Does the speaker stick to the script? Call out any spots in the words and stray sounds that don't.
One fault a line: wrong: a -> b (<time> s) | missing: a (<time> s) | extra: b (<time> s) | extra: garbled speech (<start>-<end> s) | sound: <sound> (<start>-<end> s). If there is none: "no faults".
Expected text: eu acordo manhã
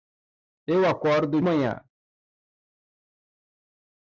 no faults